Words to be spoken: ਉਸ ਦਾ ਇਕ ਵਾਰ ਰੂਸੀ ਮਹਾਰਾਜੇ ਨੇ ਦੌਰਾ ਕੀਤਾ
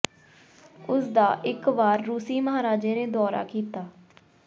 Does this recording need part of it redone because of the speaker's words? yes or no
no